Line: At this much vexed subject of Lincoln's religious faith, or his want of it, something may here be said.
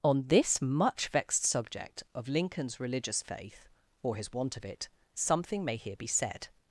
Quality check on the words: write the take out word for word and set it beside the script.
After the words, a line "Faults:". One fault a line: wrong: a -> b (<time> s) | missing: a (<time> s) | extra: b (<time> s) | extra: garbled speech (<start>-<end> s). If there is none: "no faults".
On this much vexed subject of Lincoln's religious faith, or his want of it, something may here be said.
Faults:
wrong: At -> On (0.0 s)